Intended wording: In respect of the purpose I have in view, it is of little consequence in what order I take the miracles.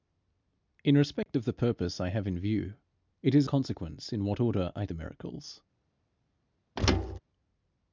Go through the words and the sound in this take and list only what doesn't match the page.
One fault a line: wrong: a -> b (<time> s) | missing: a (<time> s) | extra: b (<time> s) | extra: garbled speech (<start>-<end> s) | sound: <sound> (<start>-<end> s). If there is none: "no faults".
sound: dropout (1.2-1.3 s)
missing: of little (3.5 s)
missing: take (4.9 s)
sound: thud (6.8-7.2 s)